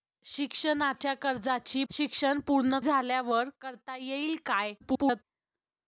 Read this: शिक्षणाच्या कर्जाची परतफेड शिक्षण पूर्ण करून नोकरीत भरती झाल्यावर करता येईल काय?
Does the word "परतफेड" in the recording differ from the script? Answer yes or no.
yes